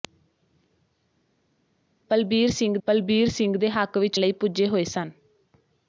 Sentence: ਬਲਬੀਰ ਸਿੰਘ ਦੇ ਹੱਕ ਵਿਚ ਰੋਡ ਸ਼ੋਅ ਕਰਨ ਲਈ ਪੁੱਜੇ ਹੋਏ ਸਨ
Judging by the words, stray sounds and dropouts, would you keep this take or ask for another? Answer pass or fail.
fail